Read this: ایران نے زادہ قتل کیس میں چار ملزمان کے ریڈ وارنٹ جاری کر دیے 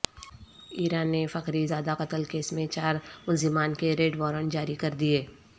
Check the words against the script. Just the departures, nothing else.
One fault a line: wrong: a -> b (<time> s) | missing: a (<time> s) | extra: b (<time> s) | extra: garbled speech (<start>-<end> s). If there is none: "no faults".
extra: فخری (1.3 s)